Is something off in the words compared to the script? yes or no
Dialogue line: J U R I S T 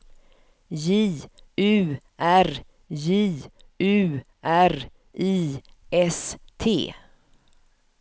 yes